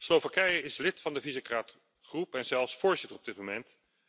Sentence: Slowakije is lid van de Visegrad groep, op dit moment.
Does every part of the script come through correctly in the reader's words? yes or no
no